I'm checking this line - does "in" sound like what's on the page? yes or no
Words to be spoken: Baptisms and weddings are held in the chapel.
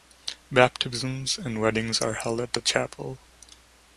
no